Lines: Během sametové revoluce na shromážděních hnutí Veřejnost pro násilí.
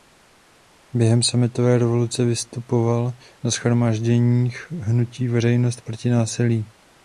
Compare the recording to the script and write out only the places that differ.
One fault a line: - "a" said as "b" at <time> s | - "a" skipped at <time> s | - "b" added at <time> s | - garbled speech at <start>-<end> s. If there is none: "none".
- "vystupoval" added at 2.2 s
- "pro" said as "proti" at 5.8 s